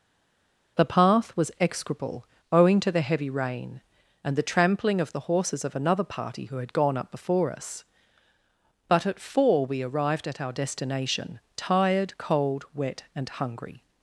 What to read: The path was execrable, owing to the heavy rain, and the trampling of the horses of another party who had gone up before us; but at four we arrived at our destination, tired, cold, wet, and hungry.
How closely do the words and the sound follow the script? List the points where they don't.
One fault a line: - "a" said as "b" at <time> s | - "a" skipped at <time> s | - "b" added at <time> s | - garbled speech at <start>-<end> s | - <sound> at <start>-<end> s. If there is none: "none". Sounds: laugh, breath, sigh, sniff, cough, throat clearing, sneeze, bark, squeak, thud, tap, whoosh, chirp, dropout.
none